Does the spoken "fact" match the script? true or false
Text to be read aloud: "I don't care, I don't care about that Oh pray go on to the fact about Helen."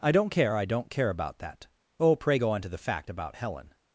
true